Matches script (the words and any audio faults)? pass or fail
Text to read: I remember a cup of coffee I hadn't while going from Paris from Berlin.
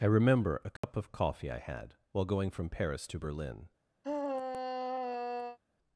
fail